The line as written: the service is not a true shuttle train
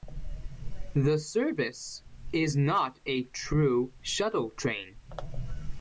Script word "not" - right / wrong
right